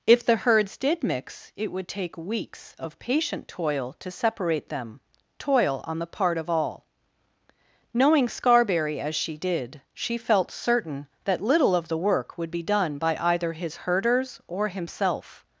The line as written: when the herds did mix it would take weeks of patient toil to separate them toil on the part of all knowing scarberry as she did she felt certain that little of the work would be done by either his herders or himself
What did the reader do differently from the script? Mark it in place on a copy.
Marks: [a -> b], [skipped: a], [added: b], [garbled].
[when -> if] the herds did mix it would take weeks of patient toil to separate them toil on the part of all knowing scarberry as she did she felt certain that little of the work would be done by either his herders or himself